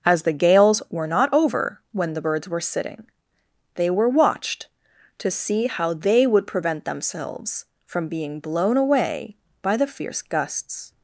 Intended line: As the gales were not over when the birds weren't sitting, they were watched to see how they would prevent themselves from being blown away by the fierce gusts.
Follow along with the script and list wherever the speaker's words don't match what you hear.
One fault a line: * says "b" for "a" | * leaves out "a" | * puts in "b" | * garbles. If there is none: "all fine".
* says "were" for "weren't"